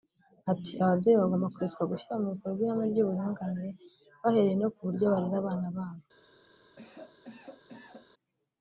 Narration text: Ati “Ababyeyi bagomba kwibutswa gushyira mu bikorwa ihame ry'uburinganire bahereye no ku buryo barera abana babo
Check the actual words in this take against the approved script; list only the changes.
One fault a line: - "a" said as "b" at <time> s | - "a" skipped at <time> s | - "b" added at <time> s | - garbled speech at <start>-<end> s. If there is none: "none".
none